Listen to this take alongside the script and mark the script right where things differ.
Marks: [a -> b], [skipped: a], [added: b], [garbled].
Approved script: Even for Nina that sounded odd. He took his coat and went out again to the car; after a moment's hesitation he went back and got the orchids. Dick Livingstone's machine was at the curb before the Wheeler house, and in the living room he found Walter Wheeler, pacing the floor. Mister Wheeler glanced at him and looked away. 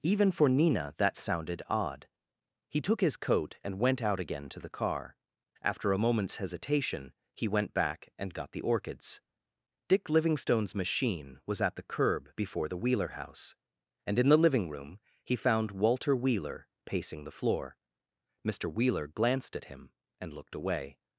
Even for Nina that sounded odd. He took his coat and went out again to the car; after a moment's hesitation he went back and got the orchids. Dick Livingstone's machine was at the curb before the Wheeler house, and in the living room he found Walter Wheeler, pacing the floor. Mister Wheeler glanced at him and looked away.